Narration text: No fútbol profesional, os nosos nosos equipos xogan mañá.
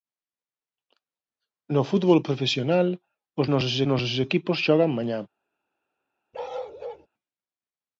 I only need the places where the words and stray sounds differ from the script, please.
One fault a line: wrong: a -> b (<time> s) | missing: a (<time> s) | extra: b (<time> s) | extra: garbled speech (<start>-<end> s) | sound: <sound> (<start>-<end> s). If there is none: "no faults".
sound: bark (6.3-7.1 s)